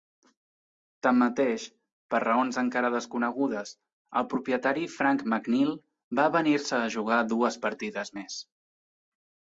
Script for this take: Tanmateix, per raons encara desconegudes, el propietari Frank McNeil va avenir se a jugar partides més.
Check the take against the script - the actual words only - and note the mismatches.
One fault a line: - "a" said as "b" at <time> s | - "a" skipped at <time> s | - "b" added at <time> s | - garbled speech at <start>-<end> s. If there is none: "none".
- "dues" added at 7.3 s